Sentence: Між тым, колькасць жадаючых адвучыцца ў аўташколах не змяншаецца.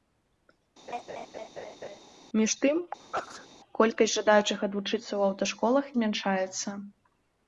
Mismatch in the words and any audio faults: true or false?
true